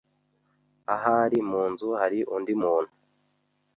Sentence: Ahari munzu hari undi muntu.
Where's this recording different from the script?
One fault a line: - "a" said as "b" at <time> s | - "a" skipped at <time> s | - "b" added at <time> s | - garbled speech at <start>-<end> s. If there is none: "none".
none